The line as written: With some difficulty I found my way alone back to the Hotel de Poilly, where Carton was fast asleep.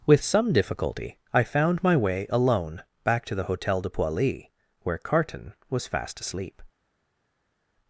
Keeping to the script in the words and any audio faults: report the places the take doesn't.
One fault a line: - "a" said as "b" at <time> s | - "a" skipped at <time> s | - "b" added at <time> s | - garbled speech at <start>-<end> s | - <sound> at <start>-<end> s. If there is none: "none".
none